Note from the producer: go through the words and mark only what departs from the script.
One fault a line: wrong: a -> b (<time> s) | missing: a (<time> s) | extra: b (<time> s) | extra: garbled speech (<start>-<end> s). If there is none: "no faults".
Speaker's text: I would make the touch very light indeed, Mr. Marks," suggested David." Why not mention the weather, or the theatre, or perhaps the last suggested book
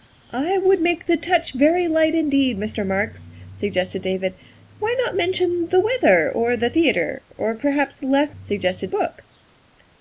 no faults